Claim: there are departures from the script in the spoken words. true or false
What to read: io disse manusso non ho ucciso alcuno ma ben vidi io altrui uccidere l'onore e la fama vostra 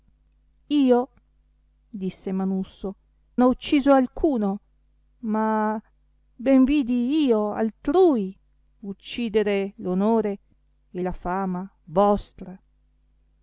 true